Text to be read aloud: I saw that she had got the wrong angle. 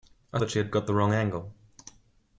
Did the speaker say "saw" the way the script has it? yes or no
no